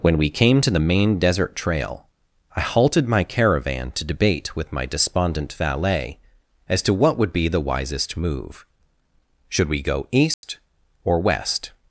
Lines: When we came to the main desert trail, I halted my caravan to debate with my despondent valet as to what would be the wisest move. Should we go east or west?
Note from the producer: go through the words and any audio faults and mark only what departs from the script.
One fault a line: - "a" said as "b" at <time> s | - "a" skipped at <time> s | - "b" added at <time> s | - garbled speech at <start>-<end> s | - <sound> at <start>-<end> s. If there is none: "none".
- dropout at 10.3-10.4 s